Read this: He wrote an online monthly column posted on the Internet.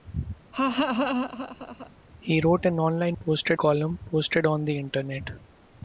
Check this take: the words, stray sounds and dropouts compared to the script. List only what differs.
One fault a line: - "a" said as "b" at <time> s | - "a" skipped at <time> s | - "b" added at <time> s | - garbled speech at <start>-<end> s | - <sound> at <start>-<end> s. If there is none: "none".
- laugh at 0.5-1.9 s
- "monthly" said as "posted" at 3.2 s